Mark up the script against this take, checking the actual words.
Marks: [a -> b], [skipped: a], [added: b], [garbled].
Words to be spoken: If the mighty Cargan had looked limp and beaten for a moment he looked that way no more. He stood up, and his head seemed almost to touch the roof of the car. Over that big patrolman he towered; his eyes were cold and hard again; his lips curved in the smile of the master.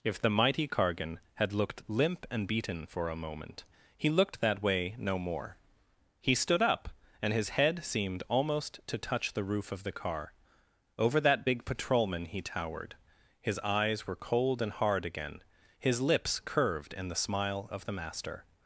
If the mighty Cargan had looked limp and beaten for a moment he looked that way no more. He stood up, and his head seemed almost to touch the roof of the car. Over that big patrolman he towered; his eyes were cold and hard again; his lips curved in the smile of the master.